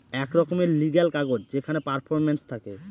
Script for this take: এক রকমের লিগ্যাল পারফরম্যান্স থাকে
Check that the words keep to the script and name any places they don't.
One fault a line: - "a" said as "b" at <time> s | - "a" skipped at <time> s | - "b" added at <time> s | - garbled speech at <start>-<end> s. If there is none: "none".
- "কাগজ যেখানে" added at 1.1 s